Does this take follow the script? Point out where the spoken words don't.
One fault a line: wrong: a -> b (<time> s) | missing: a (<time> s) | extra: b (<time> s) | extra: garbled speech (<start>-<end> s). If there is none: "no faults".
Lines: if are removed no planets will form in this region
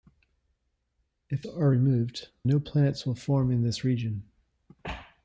no faults